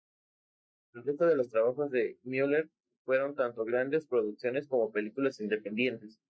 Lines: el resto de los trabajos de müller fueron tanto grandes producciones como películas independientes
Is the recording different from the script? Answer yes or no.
no